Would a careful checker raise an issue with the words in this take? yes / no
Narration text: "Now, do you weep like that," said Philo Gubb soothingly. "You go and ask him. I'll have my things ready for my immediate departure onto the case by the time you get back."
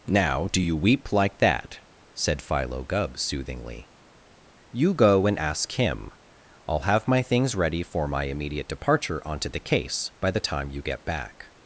no